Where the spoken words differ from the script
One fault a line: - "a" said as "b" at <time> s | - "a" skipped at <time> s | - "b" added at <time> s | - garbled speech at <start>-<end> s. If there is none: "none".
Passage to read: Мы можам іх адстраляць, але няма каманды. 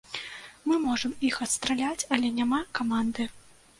none